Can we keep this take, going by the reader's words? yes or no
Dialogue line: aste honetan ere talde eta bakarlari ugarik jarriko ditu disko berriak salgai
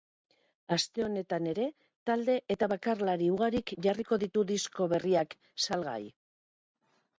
yes